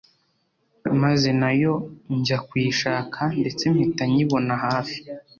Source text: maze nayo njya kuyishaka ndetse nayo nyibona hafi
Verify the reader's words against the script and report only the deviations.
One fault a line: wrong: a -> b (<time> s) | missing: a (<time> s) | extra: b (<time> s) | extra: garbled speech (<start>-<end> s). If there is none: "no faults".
wrong: nayo -> mpita (3.7 s)